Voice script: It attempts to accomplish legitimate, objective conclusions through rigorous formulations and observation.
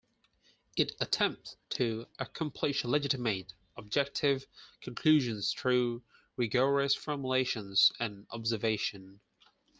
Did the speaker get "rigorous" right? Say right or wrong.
right